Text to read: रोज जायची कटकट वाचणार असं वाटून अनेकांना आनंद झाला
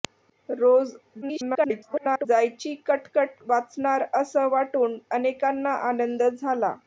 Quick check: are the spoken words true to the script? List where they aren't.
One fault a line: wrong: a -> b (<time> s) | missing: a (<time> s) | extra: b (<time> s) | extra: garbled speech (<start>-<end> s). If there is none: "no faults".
extra: garbled speech (1.2-2.3 s)